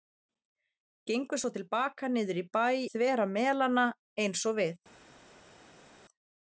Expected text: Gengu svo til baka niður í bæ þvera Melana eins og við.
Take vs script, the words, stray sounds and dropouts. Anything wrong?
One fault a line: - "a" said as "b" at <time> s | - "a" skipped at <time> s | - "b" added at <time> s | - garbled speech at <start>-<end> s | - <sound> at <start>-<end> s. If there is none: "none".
none